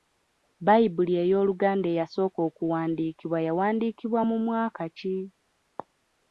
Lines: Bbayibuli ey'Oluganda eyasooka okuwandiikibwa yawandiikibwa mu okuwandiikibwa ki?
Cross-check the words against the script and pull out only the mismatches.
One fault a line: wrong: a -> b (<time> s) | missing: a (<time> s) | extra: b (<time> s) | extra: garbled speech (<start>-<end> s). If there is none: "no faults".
wrong: okuwandiikibwa -> mwaka (4.5 s)